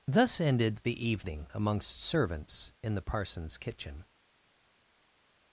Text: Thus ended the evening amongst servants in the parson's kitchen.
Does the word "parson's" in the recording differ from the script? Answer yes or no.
no